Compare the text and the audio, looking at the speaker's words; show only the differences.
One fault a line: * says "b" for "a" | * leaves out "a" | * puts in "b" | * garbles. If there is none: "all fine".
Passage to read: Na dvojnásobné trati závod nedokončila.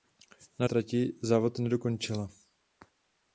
* leaves out "dvojnásobné"